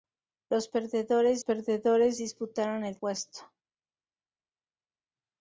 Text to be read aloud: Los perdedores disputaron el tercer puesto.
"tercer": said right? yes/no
no